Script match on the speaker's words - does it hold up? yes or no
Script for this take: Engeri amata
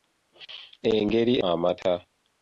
yes